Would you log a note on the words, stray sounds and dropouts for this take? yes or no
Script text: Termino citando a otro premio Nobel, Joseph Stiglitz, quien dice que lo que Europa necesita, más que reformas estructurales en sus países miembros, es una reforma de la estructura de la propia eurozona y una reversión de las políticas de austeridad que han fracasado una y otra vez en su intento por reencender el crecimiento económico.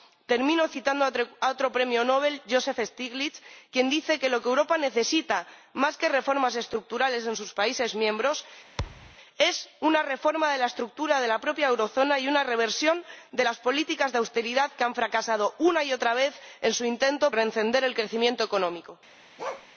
yes